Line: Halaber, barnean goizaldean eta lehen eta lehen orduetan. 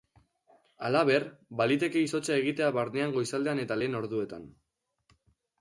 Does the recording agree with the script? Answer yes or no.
no